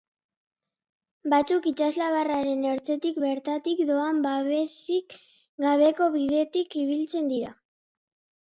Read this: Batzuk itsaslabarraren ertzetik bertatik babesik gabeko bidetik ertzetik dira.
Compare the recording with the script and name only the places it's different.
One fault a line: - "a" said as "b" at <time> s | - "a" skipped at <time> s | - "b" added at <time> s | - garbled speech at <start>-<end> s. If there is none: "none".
- "doan" added at 3.9 s
- "ertzetik" said as "ibiltzen" at 6.9 s